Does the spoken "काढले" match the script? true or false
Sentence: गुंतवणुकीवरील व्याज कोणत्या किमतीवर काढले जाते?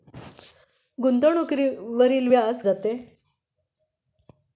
false